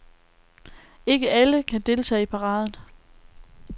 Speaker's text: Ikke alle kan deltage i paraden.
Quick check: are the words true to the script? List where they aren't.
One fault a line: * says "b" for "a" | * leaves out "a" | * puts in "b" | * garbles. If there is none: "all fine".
all fine